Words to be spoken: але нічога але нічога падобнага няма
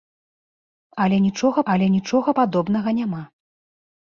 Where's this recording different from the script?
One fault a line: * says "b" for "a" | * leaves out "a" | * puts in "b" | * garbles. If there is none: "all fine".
all fine